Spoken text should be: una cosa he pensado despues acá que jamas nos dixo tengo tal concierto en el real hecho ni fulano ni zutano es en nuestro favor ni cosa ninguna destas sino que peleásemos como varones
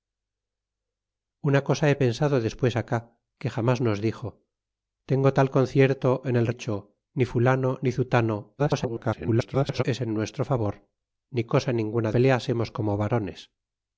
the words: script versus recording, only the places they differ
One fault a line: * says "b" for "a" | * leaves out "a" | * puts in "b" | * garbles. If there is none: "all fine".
* leaves out "real"
* garbles
* leaves out "destas sino que"